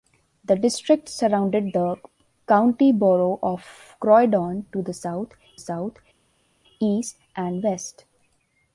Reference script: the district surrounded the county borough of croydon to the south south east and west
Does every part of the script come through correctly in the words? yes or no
yes